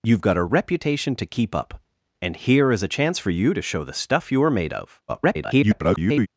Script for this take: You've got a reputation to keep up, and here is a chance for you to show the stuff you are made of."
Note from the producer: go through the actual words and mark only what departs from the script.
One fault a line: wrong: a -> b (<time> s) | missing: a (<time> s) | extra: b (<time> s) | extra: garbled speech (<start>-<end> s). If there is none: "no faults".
extra: garbled speech (5.1-6.3 s)